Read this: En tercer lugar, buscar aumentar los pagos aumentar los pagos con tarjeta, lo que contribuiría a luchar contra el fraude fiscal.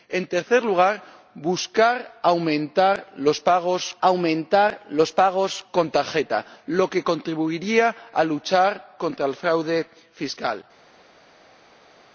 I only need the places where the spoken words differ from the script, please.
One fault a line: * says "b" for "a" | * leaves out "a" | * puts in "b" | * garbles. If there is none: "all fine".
all fine